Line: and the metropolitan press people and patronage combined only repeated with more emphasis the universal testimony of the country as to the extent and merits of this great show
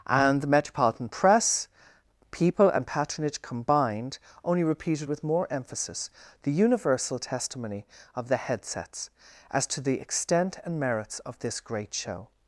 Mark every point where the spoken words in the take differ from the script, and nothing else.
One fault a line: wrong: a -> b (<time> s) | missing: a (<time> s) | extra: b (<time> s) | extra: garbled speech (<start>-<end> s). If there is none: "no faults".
wrong: country -> headsets (8.4 s)